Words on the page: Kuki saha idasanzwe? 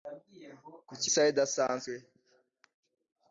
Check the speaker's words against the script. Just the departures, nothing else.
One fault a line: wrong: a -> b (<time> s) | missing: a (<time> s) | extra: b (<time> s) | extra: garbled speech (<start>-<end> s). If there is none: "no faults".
no faults